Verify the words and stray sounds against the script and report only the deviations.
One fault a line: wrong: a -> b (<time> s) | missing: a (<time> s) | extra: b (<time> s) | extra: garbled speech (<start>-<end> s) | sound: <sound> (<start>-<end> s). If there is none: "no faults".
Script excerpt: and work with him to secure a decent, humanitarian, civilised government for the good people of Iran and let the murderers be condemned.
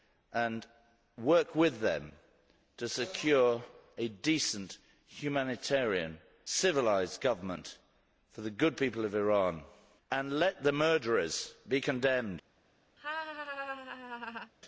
wrong: him -> them (1.8 s)
sound: laugh (13.0-14.5 s)